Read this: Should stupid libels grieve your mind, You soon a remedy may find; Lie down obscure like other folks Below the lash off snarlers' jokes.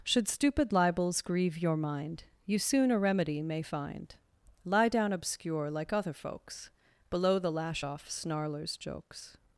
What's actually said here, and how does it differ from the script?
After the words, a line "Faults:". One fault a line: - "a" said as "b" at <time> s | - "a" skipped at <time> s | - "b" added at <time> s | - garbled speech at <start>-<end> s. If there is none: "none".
Should stupid libels grieve your mind, You soon a remedy may find; Lie down obscure like other folks Below the lash off snarlers' jokes.
Faults:
none